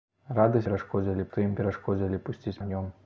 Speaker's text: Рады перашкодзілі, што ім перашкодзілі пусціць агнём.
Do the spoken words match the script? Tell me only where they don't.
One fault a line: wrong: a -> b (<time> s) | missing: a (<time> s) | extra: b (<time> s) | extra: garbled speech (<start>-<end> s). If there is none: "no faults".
no faults